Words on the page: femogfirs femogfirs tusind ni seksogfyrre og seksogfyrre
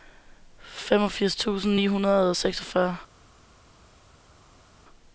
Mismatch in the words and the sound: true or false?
true